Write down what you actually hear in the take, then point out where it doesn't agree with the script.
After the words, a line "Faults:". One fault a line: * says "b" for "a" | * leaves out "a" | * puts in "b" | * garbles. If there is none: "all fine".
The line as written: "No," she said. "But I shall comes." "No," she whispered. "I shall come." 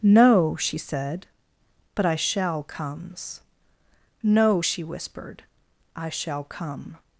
"No," she said. "But I shall comes." "No," she whispered. "I shall come."
Faults:
all fine